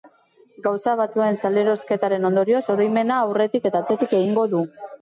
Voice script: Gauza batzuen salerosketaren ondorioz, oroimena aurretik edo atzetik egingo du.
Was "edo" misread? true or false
true